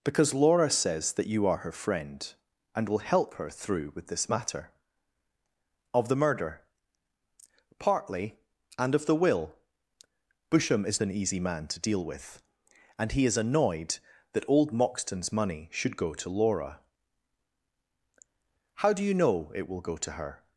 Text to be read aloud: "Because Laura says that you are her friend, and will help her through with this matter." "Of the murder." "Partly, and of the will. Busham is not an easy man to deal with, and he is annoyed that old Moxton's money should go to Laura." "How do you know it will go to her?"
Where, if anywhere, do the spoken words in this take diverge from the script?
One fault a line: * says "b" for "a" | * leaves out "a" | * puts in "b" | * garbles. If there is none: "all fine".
* leaves out "not"